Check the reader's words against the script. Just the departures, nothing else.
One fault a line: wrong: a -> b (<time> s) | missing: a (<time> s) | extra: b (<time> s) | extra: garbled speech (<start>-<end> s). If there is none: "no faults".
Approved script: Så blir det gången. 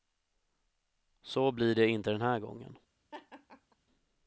extra: inte den här (1.9 s)